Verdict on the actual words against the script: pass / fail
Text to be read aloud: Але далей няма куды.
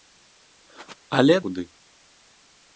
fail